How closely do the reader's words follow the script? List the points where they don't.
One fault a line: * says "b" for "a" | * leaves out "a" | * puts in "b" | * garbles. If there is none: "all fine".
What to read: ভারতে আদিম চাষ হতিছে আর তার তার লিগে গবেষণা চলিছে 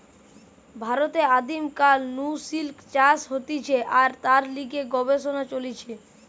* puts in "কাল নু সিল্ক"
* leaves out "তার"